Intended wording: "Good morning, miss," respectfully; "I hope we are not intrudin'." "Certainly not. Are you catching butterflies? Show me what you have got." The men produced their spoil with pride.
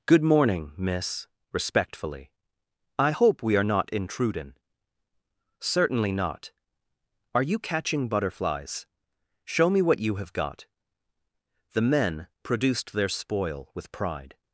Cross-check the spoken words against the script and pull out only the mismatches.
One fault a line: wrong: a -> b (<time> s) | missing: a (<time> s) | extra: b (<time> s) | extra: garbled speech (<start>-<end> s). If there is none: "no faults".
no faults